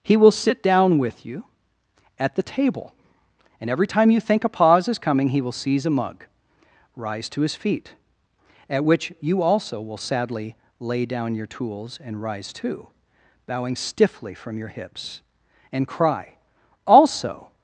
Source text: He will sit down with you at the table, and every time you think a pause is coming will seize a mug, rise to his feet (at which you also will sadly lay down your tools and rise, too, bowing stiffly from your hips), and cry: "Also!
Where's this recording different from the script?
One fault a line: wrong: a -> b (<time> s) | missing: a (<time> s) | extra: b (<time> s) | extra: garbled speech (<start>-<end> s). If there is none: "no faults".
extra: he (5.3 s)